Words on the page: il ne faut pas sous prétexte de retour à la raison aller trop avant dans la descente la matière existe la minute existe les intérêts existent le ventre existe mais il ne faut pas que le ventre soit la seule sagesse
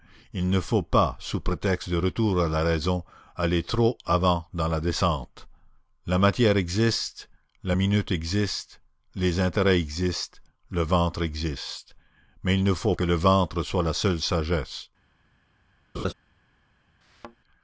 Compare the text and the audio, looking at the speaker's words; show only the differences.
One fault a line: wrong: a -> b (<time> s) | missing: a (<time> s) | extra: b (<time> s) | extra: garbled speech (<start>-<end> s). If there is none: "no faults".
missing: pas (13.0 s)